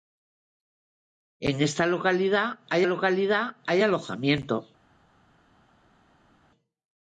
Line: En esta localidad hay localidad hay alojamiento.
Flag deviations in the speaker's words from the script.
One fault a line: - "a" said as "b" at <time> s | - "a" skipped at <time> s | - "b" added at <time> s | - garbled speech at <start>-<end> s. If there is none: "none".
none